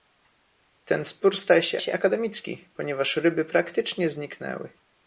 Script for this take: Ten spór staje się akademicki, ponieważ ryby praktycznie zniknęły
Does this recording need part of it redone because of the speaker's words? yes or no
yes